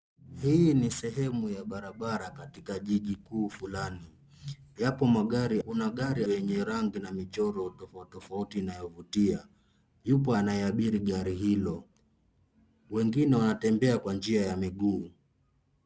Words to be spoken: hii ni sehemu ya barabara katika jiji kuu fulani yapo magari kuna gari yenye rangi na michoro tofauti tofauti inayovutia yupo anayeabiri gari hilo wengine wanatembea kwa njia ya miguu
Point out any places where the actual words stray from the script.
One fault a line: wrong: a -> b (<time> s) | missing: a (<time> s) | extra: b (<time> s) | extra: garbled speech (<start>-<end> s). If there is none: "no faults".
no faults